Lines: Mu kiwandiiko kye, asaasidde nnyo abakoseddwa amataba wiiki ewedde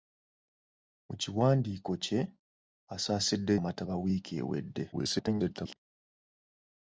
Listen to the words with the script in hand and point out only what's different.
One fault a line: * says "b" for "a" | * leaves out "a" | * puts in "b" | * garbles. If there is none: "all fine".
* leaves out "nnyo abakoseddwa"
* garbles